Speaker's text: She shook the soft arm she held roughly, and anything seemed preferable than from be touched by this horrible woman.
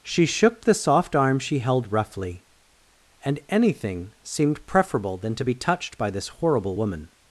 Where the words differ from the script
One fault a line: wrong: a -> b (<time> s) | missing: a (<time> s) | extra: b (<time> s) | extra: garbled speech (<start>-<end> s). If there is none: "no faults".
wrong: from -> to (5.3 s)